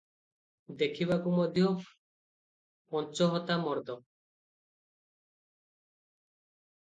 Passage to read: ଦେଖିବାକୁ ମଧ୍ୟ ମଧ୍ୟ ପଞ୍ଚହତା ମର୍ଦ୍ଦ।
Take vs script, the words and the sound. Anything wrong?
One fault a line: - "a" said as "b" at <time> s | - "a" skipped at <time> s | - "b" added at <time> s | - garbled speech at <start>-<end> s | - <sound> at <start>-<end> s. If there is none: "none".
- "ମଧ୍ୟ" skipped at 1.6 s